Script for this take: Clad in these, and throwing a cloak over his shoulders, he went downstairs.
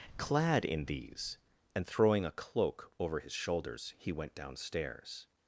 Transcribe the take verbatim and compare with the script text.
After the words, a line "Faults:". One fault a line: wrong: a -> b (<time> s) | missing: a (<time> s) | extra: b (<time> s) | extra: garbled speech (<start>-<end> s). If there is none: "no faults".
Clad in these, and throwing a cloak over his shoulders, he went downstairs.
Faults:
no faults